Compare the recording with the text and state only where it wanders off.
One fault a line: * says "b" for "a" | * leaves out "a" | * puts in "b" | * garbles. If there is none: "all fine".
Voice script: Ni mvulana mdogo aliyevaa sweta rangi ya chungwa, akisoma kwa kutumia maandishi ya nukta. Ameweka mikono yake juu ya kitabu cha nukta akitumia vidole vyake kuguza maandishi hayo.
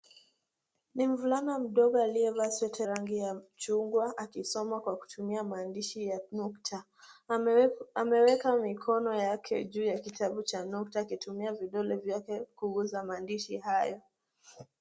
all fine